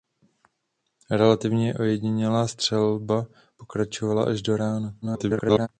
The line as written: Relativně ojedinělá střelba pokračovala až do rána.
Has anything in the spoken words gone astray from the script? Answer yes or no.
yes